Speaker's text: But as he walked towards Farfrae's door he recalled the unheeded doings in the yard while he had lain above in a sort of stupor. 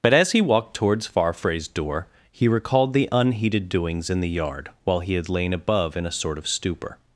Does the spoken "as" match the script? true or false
true